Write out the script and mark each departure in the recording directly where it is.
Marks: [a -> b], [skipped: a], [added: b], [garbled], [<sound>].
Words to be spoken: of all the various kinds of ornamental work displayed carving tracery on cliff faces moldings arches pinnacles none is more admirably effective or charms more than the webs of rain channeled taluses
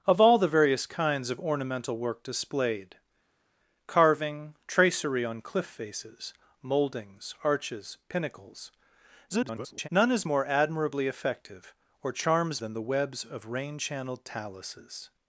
of all the various kinds of ornamental work displayed carving tracery on cliff faces moldings arches pinnacles [garbled] none is more admirably effective or charms [skipped: more] than the webs of rain channeled taluses